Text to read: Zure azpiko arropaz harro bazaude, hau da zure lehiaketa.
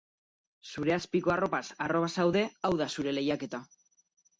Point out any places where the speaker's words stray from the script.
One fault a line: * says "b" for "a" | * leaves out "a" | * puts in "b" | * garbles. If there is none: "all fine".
all fine